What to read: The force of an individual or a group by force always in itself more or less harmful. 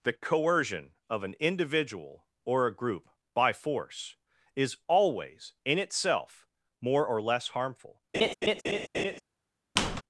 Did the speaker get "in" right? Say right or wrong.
right